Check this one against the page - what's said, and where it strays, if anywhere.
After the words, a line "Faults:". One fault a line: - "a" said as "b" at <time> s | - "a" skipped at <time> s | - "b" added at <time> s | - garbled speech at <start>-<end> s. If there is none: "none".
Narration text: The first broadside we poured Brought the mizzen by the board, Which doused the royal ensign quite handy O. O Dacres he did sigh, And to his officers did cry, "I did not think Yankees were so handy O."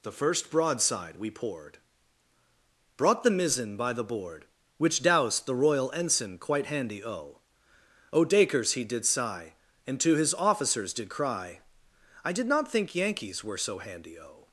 The first broadside we poured Brought the mizzen by the board, Which doused the royal ensign quite handy O. O Dacres he did sigh, And to his officers did cry, "I did not think Yankees were so handy O."
Faults:
none